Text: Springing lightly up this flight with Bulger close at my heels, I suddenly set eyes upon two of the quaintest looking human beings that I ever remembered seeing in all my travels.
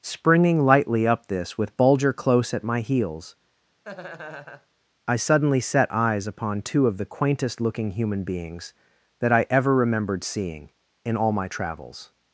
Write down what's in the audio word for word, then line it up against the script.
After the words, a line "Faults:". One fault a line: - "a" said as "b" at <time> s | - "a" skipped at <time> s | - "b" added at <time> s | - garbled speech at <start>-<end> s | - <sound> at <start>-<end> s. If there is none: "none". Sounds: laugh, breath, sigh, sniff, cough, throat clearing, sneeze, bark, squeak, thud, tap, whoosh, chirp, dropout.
Springing lightly up this with Bulger close at my heels, I suddenly set eyes upon two of the quaintest looking human beings that I ever remembered seeing in all my travels.
Faults:
- "flight" skipped at 1.6 s
- laugh at 3.8-4.7 s